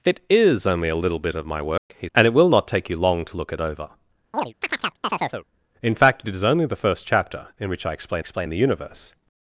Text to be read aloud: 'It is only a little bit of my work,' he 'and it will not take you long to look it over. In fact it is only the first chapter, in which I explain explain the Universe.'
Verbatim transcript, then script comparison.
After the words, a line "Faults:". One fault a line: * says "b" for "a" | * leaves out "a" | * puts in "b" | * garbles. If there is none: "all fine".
'It is only a little bit of my work,' he 'and it will not take you long to look it over. In fact it is only the first chapter, in which I explain explain the Universe.'
Faults:
all fine